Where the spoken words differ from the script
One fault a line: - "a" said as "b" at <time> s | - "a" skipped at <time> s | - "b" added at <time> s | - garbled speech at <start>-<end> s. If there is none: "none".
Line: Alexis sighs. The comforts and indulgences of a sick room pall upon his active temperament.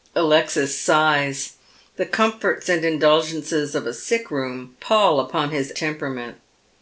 - "active" skipped at 5.7 s